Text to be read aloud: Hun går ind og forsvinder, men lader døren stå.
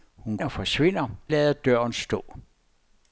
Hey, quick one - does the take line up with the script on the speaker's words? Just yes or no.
no